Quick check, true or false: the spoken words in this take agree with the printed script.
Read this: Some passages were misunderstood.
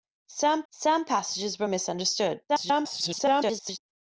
false